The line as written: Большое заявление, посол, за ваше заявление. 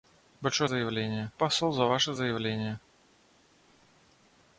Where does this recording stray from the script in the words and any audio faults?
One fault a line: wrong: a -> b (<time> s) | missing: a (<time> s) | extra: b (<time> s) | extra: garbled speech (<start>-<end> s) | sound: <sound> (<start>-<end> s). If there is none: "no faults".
no faults